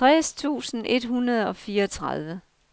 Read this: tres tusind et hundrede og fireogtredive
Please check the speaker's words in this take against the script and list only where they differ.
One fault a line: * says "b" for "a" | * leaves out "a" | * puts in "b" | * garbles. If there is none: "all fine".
all fine